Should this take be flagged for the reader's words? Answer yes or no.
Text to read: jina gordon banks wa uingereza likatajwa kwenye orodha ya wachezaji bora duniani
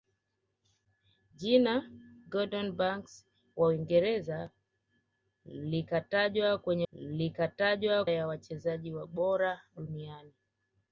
yes